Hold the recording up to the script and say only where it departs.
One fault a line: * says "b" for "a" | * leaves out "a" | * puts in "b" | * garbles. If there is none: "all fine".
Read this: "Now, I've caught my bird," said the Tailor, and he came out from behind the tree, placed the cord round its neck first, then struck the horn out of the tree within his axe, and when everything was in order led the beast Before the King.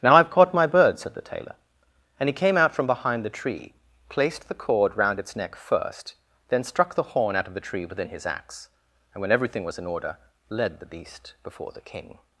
all fine